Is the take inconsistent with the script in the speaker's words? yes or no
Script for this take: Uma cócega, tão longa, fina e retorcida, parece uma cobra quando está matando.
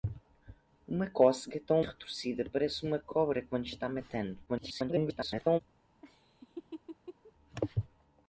yes